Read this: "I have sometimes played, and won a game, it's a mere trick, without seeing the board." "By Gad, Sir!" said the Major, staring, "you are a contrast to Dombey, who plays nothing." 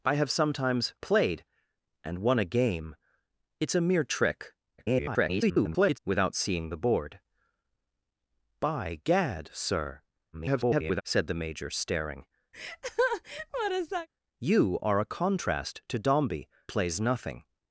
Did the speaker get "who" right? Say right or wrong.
wrong